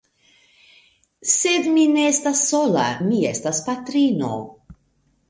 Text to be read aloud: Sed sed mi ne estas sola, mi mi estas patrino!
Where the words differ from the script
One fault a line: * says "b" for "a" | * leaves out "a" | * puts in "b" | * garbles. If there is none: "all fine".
* leaves out "sed"
* leaves out "mi"